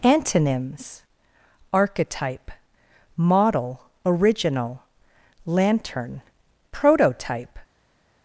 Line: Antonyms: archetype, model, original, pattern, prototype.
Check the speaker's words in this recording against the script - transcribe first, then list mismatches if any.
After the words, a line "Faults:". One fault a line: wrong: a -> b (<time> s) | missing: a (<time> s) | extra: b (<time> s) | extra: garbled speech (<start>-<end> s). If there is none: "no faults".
Antonyms: archetype, model, original, lantern, prototype.
Faults:
wrong: pattern -> lantern (5.5 s)